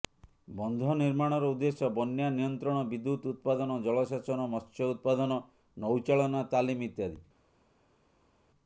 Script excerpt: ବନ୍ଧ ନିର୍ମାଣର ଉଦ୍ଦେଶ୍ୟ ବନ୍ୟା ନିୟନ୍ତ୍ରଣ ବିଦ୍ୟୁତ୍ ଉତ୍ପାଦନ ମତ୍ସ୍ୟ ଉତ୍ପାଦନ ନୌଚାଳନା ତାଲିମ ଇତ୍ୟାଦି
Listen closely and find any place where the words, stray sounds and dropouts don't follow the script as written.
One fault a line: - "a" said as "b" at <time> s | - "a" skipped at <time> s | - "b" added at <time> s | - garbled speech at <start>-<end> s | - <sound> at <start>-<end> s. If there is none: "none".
- "ଜଳସେଚନ" added at 3.8 s